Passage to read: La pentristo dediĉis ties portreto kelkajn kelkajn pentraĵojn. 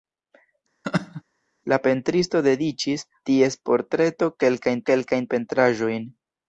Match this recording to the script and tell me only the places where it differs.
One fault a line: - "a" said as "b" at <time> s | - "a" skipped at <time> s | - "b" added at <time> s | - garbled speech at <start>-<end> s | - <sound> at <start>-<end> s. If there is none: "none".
- laugh at 0.8-1.2 s